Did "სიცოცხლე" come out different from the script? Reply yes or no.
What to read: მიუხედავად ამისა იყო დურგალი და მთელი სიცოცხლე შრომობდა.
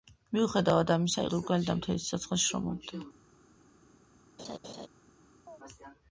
no